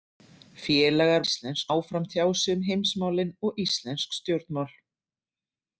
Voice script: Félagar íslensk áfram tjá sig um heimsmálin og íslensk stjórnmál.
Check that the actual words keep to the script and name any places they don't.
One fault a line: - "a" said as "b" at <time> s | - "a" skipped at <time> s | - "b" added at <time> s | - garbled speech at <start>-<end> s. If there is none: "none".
none